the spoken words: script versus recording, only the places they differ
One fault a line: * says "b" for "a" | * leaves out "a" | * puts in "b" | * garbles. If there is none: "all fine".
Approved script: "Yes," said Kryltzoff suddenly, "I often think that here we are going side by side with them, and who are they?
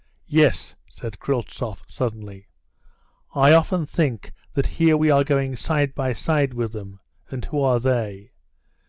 all fine